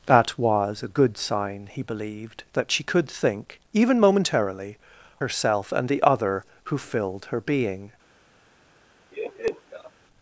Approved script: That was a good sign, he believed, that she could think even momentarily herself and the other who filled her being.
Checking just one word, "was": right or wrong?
right